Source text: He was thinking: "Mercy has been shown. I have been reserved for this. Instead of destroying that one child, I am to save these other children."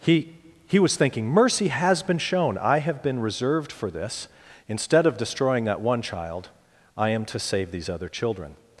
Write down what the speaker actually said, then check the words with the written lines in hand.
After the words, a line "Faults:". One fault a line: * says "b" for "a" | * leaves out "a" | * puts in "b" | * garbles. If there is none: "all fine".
He he was thinking: "Mercy has been shown. I have been reserved for this. Instead of destroying that one child, I am to save these other children."
Faults:
* puts in "he"